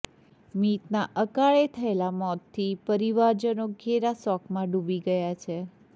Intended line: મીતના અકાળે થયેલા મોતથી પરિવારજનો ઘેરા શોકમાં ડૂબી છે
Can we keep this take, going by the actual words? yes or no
no